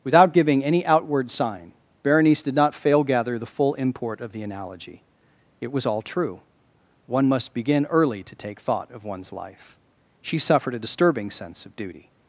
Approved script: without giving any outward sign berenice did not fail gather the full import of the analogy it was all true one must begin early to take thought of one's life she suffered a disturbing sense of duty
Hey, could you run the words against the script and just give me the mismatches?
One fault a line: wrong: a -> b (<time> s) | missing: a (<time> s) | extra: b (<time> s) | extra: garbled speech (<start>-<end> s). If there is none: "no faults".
no faults